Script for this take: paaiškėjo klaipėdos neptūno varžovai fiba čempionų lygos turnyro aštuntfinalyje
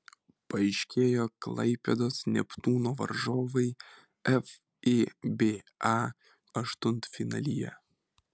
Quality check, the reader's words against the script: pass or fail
fail